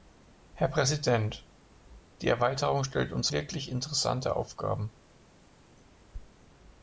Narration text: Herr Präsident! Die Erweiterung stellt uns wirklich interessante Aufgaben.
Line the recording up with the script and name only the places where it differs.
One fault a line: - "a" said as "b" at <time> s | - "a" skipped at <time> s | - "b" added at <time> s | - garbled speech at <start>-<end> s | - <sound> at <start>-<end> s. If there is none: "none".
none